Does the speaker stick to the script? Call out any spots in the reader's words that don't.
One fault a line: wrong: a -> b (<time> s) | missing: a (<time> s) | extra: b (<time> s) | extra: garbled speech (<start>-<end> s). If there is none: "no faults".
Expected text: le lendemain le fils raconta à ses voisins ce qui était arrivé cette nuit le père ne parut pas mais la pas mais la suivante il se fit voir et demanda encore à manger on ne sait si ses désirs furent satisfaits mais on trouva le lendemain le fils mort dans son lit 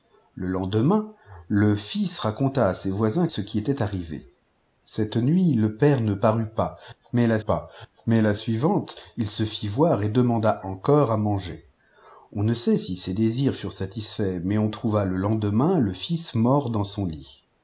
no faults